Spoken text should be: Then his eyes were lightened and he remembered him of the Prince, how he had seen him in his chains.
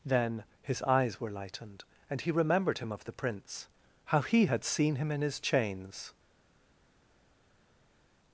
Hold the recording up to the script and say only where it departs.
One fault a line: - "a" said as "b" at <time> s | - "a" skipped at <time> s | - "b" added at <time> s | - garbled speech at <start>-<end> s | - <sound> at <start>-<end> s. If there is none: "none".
none